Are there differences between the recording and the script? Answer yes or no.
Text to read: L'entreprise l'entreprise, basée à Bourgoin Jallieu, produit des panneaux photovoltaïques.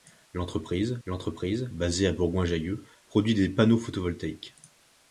no